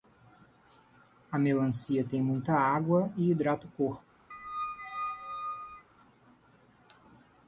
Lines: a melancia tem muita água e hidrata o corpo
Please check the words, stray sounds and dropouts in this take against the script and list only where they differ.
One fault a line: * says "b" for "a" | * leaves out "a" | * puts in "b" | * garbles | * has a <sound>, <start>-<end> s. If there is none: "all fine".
* has a squeak, 4.3-5.9 s